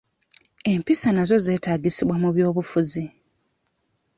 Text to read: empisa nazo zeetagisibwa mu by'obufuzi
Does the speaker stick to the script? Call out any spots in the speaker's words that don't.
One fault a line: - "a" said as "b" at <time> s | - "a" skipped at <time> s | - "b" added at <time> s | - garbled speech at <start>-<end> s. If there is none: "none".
none